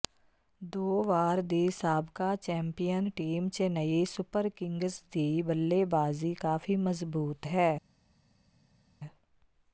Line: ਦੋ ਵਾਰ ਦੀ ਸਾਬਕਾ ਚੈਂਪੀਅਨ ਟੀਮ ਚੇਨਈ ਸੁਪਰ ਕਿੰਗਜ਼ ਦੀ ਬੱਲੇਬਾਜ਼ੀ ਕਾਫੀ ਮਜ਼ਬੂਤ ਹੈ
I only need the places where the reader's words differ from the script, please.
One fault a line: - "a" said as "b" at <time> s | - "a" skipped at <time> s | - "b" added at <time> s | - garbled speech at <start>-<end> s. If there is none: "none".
none